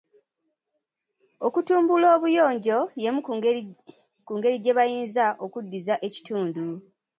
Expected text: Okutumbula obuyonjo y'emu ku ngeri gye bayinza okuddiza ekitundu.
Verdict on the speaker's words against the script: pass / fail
pass